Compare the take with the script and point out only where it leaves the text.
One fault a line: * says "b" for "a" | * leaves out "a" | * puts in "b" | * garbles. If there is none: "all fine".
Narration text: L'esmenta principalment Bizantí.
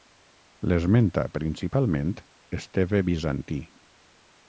* puts in "Esteve"